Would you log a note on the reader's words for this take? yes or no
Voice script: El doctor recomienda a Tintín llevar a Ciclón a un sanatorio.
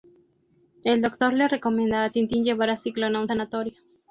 yes